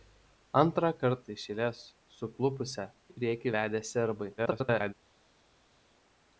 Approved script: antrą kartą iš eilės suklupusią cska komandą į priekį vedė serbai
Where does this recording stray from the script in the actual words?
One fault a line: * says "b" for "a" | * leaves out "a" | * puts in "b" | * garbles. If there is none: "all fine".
* leaves out "cska komandą"
* garbles